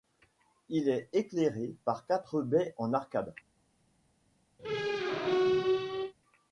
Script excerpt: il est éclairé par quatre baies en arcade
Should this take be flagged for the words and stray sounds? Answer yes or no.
yes